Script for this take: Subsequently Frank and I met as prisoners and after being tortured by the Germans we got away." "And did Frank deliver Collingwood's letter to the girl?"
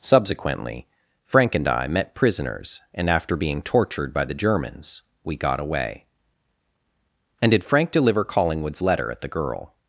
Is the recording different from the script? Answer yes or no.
yes